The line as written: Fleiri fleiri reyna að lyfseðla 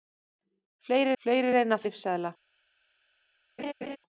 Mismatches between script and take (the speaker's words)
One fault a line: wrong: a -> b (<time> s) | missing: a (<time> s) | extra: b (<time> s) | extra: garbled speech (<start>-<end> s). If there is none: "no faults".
no faults